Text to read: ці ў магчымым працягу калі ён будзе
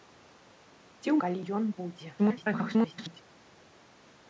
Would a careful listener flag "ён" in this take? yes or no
no